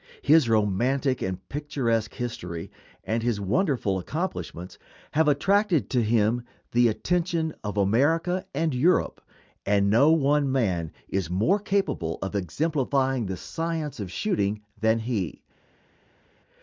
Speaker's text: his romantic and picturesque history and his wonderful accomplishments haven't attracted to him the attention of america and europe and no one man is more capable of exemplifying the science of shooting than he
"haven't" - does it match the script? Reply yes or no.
no